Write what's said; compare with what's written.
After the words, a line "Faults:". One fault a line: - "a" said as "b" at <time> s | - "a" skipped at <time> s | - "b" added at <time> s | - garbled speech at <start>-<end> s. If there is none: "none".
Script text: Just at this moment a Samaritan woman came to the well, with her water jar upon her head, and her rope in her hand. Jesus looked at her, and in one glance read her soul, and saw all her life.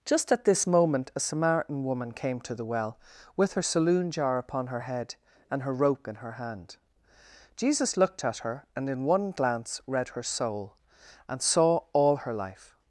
Just at this moment a Samaritan woman came to the well, with her saloon jar upon her head, and her rope in her hand. Jesus looked at her, and in one glance read her soul, and saw all her life.
Faults:
- "water" said as "saloon" at 3.6 s